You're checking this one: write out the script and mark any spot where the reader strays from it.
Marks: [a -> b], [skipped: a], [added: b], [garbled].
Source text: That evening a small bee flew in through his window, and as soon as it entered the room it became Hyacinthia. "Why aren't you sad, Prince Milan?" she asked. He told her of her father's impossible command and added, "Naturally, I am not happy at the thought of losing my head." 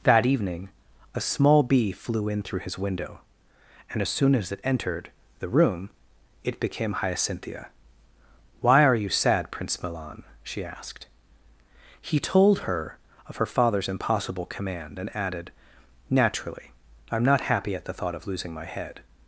That evening a small bee flew in through his window, and as soon as it entered the room it became Hyacinthia. "Why [aren't -> are] you sad, Prince Milan?" she asked. He told her of her father's impossible command and added, "Naturally, I am not happy at the thought of losing my head."